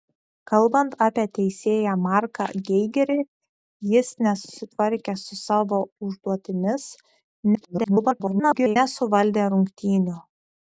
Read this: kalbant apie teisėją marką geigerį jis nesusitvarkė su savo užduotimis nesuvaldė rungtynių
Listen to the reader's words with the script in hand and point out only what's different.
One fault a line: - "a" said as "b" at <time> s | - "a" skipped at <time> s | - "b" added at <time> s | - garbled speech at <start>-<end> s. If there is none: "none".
- garbled speech at 7.5-8.8 s